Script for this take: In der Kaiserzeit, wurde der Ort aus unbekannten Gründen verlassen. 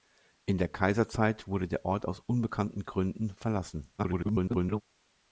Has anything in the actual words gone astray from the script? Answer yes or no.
yes